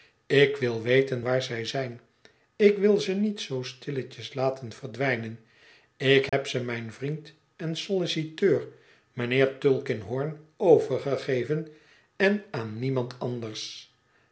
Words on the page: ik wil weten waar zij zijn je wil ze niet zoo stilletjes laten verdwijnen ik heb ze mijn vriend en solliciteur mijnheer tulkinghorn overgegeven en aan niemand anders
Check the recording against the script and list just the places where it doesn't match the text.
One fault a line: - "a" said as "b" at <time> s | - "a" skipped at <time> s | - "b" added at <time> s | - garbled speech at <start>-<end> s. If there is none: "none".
- "je" said as "ik" at 2.6 s